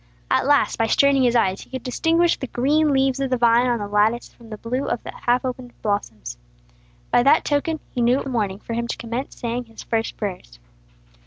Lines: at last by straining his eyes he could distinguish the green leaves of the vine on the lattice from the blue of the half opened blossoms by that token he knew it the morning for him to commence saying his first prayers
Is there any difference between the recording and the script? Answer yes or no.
no